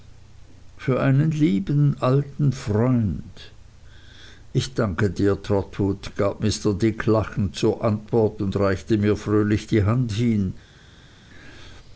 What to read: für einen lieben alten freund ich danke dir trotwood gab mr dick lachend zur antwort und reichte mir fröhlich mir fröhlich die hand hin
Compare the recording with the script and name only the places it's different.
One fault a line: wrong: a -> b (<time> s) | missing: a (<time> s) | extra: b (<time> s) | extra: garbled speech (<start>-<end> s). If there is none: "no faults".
missing: mir fröhlich (9.7 s)